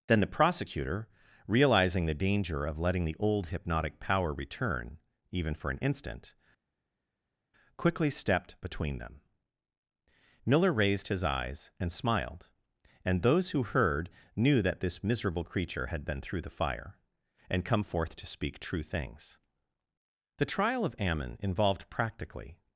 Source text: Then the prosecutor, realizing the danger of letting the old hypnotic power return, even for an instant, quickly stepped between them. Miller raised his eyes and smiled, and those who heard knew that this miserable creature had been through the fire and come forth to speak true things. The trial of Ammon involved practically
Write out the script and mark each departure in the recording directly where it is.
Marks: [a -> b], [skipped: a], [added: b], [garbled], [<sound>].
Then the prosecutor, realizing the danger of letting the old hypnotic power return, even for an instant, quickly stepped between them. Miller raised his eyes and smiled, and those who heard knew that this miserable creature had been through the fire and come forth to speak true things. The trial of Ammon involved practically